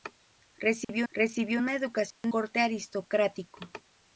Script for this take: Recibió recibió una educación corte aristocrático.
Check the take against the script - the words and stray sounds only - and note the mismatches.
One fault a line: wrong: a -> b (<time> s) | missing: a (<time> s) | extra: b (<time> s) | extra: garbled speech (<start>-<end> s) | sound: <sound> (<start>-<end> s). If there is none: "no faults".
sound: dropout (0.8-0.9 s)
sound: dropout (2.1-2.2 s)